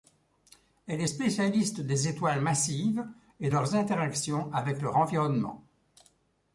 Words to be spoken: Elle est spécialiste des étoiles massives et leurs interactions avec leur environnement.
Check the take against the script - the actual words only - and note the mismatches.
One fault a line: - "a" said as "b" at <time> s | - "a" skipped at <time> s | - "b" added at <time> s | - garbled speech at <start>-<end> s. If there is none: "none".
none